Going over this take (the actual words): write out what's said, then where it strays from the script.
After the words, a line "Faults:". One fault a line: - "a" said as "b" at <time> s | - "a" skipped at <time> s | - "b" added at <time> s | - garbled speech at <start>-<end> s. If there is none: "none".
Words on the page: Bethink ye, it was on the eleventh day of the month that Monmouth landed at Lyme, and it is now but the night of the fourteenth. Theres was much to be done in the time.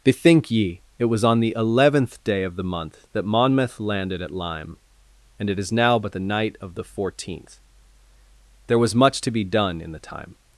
Bethink ye, it was on the eleventh day of the month that Monmouth landed at Lyme, and it is now but the night of the fourteenth. There was much to be done in the time.
Faults:
- "Theres" said as "There" at 8.7 s